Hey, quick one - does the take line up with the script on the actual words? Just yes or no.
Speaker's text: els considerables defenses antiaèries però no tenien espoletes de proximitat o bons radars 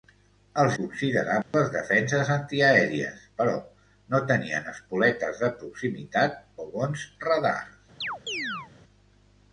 yes